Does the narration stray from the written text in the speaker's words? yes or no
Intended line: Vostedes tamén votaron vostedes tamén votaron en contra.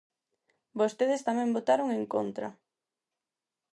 yes